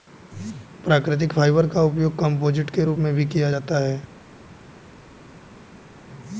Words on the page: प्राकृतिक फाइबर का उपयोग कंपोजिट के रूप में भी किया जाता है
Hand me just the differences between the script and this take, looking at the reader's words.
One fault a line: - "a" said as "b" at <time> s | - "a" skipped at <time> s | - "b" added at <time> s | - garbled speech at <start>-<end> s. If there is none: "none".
none